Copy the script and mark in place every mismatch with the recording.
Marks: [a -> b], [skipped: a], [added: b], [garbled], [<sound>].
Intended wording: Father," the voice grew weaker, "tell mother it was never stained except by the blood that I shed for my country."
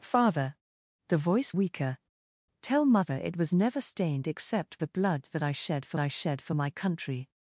Father," the voice [skipped: grew] weaker, "tell mother it was never stained except [skipped: by] the blood that I shed for [added: I shed for] my country."